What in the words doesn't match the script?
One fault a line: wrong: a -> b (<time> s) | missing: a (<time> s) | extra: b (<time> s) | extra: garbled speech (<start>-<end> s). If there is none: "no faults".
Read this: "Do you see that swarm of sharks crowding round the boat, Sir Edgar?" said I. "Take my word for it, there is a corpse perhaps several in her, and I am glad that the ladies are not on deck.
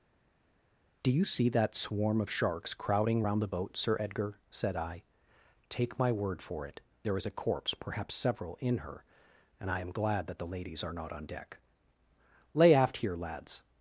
extra: Lay aft here lads (12.5 s)